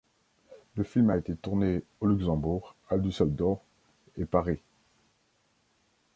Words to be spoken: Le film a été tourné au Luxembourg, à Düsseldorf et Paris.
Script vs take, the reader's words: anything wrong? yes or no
no